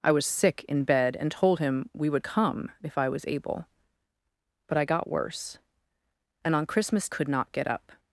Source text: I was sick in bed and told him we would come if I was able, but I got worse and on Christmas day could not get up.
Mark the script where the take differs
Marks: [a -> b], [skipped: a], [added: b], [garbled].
I was sick in bed and told him we would come if I was able, but I got worse and on Christmas [skipped: day] could not get up.